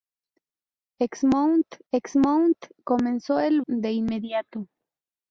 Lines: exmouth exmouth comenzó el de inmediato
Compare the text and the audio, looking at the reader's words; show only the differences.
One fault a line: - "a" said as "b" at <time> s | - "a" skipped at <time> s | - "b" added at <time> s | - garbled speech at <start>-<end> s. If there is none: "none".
none